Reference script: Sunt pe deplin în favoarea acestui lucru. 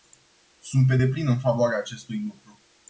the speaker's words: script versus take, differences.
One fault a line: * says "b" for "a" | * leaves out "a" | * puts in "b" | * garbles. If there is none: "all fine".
all fine